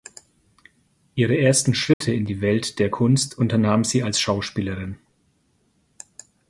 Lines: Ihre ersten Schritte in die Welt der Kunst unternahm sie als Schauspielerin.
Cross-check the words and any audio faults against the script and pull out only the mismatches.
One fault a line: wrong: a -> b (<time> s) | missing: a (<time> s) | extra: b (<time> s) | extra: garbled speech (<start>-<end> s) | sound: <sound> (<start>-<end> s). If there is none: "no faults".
sound: dropout (1.9-2.0 s)